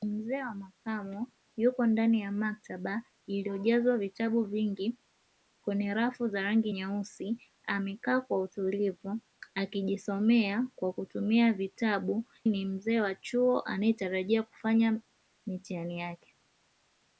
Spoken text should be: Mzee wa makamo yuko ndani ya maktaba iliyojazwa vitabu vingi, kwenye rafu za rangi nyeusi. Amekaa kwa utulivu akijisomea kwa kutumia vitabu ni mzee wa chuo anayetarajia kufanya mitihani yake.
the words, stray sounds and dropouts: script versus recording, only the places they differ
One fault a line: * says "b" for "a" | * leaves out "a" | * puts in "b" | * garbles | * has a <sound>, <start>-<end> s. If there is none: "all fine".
all fine